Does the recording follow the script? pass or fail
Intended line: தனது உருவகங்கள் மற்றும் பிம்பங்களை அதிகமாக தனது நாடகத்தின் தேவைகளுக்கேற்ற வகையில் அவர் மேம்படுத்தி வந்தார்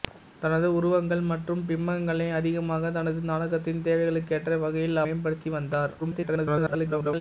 fail